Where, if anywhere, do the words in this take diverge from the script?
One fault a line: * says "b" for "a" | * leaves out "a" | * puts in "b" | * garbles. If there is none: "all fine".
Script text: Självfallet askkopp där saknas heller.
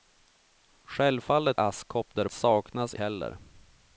all fine